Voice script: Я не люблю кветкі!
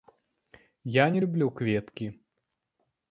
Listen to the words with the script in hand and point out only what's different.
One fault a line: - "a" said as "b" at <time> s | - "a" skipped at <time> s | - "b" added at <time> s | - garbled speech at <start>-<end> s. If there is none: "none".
none